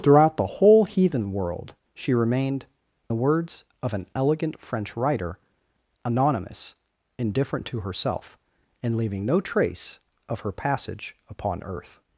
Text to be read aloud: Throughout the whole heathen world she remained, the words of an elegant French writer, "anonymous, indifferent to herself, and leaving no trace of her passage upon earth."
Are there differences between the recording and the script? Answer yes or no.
no